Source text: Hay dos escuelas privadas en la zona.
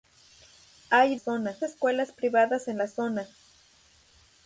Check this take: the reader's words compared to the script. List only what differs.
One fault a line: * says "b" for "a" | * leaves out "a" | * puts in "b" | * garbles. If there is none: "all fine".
* says "zona" for "dos"